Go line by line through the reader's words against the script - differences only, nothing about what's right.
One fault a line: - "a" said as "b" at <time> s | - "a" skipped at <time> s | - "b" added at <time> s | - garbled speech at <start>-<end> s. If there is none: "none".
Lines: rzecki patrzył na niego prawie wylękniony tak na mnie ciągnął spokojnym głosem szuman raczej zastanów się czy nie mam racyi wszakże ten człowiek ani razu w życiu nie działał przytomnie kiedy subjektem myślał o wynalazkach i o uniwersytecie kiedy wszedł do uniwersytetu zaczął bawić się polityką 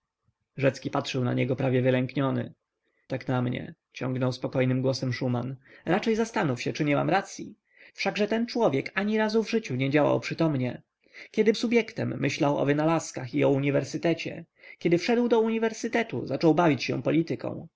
none